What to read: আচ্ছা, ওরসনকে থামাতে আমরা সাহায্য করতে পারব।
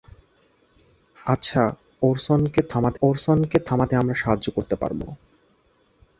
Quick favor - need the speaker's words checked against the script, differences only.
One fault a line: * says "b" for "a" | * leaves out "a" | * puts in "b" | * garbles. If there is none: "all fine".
* puts in "ওরসনকে থামাতে"